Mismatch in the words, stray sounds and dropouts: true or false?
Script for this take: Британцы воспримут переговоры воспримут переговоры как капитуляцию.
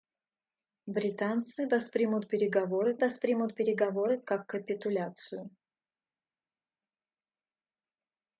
false